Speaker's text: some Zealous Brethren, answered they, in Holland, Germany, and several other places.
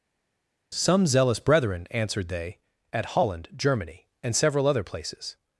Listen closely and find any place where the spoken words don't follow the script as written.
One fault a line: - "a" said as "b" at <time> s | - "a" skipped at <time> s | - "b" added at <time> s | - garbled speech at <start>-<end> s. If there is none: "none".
- "in" said as "at" at 2.9 s